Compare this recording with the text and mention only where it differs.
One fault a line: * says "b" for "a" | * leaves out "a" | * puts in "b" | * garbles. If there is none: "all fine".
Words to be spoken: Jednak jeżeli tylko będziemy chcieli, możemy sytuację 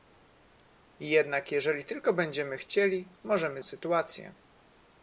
all fine